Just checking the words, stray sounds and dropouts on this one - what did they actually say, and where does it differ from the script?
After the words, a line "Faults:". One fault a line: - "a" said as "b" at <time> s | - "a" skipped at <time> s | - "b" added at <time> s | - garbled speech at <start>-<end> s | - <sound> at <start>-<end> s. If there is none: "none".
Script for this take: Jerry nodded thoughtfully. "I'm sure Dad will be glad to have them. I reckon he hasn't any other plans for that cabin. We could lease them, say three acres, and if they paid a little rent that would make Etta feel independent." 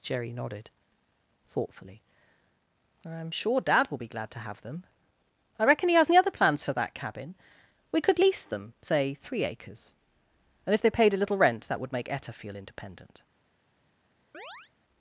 Jerry nodded thoughtfully. "I'm sure Dad will be glad to have them. I reckon he has any other plans for that cabin. We could lease them, say three acres, and if they paid a little rent that would make Etta feel independent."
Faults:
- "hasn't" said as "has" at 6.0 s
- chirp at 14.3-14.7 s